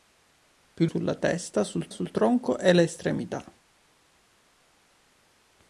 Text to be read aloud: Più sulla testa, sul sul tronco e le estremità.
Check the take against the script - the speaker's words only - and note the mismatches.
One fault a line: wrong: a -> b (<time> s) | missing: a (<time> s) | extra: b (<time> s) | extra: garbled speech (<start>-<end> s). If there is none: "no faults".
no faults